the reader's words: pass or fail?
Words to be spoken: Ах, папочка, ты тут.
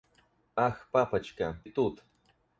fail